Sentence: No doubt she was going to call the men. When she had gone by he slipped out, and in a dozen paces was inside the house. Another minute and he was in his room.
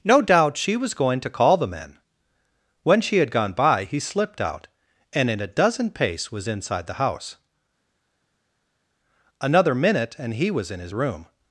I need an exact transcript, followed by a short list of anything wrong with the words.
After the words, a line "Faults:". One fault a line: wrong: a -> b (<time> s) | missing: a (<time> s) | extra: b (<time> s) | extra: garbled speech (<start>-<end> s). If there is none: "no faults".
No doubt she was going to call the men. When she had gone by he slipped out, and in a dozen pace was inside the house. Another minute and he was in his room.
Faults:
wrong: paces -> pace (5.9 s)